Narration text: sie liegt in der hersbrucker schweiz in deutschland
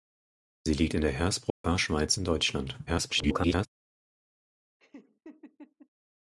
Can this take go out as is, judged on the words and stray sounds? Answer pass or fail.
fail